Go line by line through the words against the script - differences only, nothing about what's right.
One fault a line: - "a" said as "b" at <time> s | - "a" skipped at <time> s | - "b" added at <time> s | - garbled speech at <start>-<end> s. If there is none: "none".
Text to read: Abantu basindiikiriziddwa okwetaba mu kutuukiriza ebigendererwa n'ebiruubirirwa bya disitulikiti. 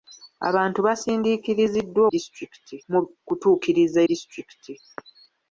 - "okwetaba" said as "disitulikiti" at 2.1 s
- "ebigendererwa n'ebiruubirirwa bya" skipped at 4.0 s